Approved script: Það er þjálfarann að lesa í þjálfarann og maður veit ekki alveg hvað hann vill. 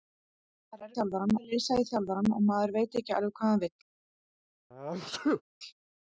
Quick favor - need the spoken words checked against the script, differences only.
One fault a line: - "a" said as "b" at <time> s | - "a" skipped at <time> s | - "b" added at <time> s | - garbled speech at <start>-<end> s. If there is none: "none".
none